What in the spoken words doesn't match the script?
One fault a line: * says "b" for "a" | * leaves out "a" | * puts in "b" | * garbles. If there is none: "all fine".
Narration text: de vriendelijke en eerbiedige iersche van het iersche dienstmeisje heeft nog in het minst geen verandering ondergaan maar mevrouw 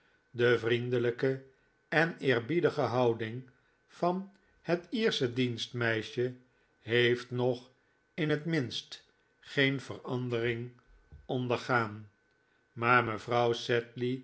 * says "houding" for "iersche"